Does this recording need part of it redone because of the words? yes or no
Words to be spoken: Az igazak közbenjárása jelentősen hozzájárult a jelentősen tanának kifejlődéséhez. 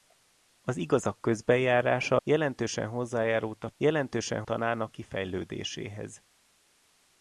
no